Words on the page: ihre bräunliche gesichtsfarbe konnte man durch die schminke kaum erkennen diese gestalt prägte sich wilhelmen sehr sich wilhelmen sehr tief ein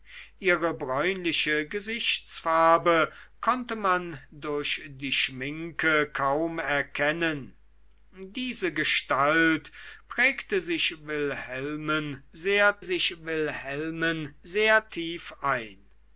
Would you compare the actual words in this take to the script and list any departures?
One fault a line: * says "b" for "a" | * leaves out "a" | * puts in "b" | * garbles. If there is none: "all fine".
all fine